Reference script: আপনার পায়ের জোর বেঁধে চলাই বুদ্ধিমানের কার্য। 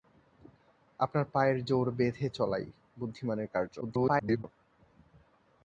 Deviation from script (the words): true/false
true